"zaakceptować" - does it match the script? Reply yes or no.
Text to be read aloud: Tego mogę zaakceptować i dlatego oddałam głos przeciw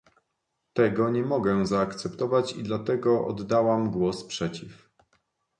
yes